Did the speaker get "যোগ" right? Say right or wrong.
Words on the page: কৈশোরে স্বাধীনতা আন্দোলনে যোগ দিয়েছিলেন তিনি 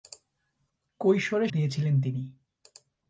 wrong